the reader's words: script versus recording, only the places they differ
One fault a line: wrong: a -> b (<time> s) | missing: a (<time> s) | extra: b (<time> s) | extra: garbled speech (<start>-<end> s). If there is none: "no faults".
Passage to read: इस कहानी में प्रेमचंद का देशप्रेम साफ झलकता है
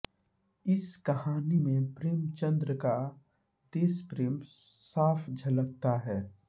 no faults